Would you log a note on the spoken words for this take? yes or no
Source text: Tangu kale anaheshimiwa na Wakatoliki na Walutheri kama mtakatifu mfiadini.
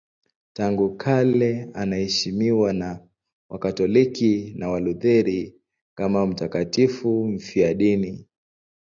no